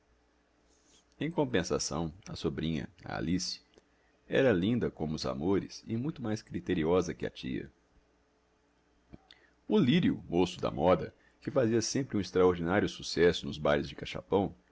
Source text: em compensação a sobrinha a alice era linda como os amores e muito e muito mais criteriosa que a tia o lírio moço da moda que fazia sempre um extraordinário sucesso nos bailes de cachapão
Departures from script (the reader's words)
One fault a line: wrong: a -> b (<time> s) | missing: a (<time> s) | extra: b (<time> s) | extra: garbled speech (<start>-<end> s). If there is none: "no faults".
missing: e muito (6.2 s)